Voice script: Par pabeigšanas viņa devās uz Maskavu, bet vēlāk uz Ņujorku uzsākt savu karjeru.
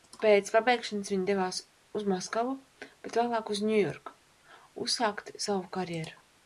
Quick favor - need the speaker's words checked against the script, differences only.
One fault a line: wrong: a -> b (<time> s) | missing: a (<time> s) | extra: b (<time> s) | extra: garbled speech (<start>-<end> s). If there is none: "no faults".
wrong: Par -> Pēc (0.2 s)